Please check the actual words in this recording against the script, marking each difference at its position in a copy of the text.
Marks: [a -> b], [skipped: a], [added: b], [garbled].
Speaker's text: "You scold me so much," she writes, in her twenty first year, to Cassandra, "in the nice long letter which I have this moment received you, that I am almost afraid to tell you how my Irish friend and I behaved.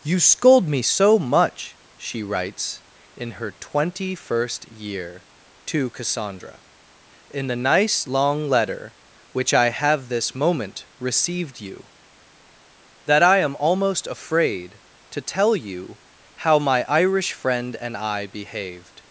"You scold me so much," she writes, in her twenty first year, to Cassandra, "in the nice long letter which I have this moment received you, that I am almost afraid to tell you how my Irish friend and I behaved.